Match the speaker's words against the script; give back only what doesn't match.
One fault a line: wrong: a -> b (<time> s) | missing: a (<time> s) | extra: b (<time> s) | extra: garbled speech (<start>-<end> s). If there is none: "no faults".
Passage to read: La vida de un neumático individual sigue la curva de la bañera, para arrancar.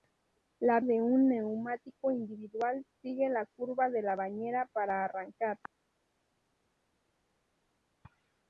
missing: vida (0.8 s)